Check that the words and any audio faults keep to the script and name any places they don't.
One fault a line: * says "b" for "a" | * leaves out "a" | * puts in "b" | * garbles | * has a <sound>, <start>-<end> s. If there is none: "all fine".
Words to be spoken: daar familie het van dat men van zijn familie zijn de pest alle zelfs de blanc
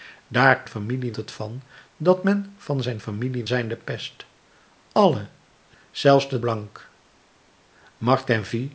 all fine